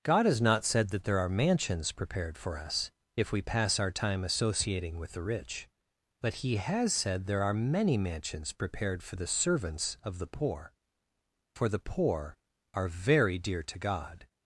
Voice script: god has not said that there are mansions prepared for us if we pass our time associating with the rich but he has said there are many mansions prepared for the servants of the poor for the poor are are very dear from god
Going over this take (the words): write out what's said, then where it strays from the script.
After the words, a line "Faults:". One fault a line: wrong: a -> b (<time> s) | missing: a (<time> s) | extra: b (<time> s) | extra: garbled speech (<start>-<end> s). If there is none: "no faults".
god has not said that there are mansions prepared for us if we pass our time associating with the rich but he has said there are many mansions prepared for the servants of the poor for the poor are very dear to god
Faults:
missing: are (12.9 s)
wrong: from -> to (13.6 s)